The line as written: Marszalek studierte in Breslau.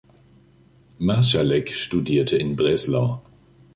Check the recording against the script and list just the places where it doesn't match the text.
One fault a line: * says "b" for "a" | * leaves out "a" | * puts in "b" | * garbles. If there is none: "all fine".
all fine